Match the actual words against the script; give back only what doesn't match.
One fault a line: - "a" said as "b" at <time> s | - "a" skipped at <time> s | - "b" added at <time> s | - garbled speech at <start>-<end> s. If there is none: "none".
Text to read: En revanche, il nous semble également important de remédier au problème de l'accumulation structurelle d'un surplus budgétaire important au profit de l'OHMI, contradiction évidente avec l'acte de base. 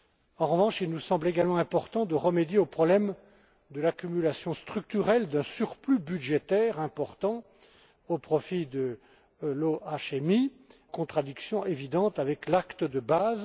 none